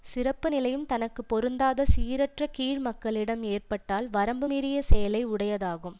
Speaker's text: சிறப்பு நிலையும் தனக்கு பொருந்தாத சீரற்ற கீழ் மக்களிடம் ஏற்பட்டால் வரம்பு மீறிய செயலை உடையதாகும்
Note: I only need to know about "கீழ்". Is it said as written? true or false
true